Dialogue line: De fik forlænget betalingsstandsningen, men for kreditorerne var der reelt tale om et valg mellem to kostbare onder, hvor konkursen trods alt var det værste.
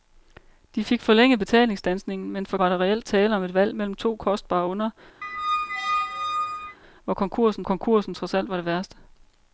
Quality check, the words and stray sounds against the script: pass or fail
fail